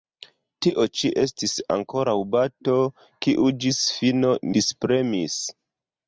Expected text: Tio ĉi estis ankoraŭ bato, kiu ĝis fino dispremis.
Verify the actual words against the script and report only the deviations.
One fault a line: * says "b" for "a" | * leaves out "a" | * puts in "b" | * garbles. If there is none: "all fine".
all fine